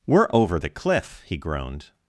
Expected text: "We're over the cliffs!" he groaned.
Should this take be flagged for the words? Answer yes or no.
yes